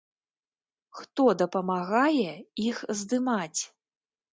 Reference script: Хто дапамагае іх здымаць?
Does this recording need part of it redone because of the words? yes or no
no